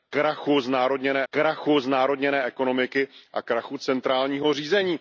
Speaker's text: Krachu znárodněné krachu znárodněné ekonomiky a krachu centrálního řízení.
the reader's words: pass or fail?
pass